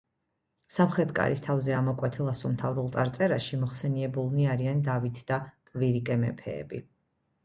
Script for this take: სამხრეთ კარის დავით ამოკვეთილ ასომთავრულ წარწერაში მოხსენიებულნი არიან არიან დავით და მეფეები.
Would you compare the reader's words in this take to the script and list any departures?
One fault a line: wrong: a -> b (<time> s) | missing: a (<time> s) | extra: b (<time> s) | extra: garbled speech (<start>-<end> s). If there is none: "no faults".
wrong: დავით -> თავზე (1.5 s)
missing: არიან (4.8 s)
extra: კვირიკე (5.7 s)